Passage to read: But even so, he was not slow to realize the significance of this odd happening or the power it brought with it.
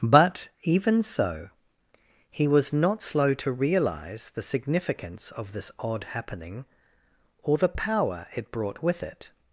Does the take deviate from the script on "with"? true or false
false